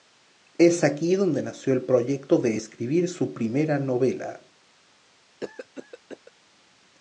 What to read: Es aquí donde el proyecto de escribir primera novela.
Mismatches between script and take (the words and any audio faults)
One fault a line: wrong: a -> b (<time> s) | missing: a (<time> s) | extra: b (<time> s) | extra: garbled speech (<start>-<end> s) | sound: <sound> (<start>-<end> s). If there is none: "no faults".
extra: nació (1.4 s)
extra: su (3.1 s)
sound: cough (5.4-6.3 s)